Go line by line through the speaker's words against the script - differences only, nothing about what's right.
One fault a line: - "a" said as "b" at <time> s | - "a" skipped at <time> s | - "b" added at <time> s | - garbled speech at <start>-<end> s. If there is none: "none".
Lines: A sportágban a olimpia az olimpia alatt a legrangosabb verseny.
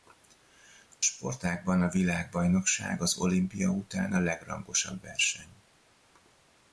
- "olimpia" said as "világbajnokság" at 1.9 s
- "alatt" said as "után" at 3.7 s